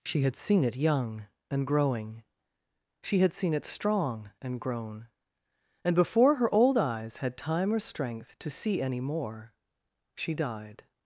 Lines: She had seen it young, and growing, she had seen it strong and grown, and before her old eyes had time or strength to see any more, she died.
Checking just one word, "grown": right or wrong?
right